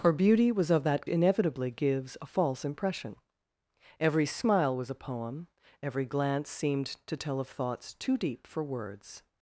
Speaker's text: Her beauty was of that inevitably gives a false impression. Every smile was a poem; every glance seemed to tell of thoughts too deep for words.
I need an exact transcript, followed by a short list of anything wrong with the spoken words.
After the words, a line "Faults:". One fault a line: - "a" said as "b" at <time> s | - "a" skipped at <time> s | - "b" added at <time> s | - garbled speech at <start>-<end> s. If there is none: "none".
Her beauty was of that inevitably gives a false impression. Every smile was a poem; every glance seemed to tell of thoughts too deep for words.
Faults:
none